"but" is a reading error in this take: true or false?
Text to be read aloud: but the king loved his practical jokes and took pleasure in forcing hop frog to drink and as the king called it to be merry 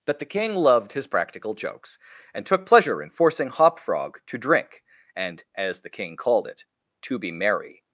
true